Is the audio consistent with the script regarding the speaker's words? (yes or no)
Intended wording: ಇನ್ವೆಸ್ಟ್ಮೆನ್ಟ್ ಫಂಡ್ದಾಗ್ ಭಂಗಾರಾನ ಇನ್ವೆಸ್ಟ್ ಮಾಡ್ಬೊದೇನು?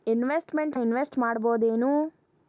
no